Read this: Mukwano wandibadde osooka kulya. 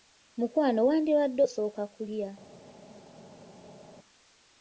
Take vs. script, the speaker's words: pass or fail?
pass